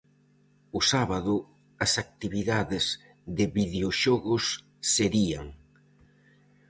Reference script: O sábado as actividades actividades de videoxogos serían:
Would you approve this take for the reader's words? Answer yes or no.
no